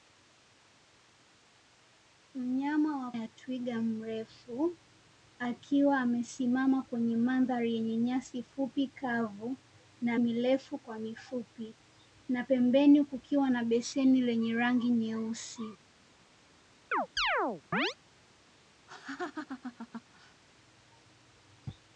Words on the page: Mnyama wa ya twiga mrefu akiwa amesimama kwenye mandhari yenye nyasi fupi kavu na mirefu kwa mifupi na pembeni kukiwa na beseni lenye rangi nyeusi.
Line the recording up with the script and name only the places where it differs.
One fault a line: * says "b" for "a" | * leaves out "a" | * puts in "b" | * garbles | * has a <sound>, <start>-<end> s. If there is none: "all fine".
* has a chirp, 16.9-17.9 s
* has a laugh, 18.9-20.4 s